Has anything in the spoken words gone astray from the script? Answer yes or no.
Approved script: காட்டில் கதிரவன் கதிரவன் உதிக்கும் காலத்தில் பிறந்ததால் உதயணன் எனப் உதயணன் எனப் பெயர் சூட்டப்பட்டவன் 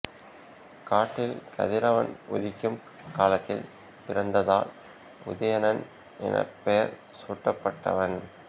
yes